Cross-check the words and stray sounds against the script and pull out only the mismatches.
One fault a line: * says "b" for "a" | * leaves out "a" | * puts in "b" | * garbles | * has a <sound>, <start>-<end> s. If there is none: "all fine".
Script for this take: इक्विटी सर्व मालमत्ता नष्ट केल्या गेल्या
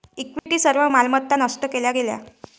* has a dropout, 0.4-0.5 s